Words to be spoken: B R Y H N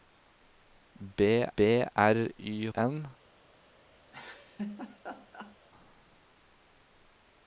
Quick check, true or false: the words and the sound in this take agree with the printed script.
false